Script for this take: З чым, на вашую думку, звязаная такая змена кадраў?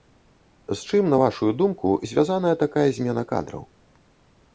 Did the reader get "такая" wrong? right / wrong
right